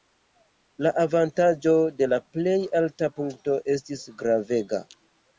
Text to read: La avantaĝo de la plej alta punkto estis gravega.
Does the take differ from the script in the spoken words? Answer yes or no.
no